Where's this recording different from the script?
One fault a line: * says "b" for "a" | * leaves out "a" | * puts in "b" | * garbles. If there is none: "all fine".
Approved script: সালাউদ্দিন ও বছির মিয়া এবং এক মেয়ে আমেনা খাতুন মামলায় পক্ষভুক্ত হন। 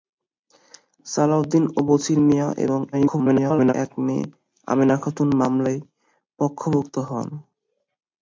* garbles